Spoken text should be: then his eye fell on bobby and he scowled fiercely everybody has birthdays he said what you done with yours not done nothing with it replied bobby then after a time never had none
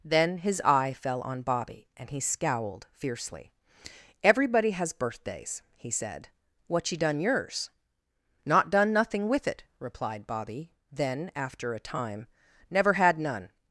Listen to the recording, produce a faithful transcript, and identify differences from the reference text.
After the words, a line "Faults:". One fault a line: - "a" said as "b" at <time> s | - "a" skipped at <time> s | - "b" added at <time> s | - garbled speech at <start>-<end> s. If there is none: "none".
then his eye fell on bobby and he scowled fiercely everybody has birthdays he said what you done yours not done nothing with it replied bobby then after a time never had none
Faults:
- "with" skipped at 7.2 s